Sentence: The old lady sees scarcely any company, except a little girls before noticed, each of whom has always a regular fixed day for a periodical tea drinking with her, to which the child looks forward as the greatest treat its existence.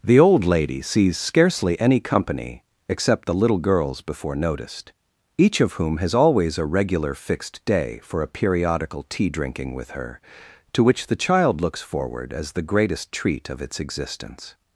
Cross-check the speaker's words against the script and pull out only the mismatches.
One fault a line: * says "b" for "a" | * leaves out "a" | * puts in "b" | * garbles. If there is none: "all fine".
* says "the" for "a"
* puts in "of"